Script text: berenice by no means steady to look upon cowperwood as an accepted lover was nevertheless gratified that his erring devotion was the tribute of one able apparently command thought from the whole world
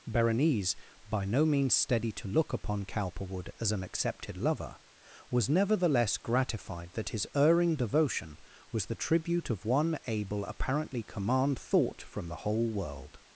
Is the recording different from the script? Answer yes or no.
no